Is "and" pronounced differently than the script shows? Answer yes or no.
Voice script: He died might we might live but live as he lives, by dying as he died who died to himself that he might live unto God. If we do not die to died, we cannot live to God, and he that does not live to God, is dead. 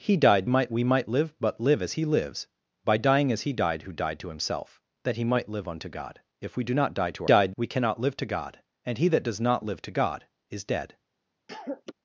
no